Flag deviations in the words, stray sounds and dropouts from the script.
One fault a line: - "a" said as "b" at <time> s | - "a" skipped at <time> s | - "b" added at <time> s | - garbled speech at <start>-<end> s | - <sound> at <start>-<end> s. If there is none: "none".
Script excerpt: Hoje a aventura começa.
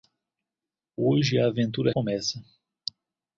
none